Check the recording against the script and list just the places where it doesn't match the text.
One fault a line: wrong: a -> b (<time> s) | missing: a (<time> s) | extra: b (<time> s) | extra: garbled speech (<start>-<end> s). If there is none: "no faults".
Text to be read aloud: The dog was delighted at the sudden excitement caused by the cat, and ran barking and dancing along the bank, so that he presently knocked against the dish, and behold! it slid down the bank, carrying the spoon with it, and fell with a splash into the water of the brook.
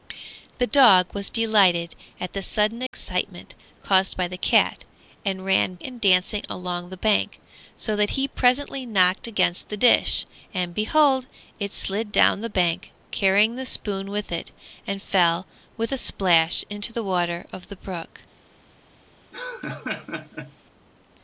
missing: barking (5.8 s)